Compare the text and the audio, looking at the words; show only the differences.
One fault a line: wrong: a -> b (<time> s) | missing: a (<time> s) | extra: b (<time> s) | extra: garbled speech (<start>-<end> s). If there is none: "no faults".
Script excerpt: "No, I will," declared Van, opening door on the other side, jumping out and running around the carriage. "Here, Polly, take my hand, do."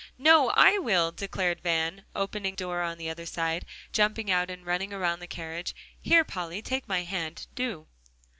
no faults